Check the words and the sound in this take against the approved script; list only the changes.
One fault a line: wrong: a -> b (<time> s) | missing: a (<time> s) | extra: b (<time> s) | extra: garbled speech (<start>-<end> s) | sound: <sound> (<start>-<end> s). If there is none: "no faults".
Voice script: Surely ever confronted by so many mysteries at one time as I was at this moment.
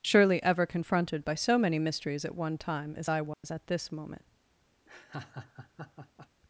sound: dropout (3.3-3.4 s)
sound: laugh (4.9-6.3 s)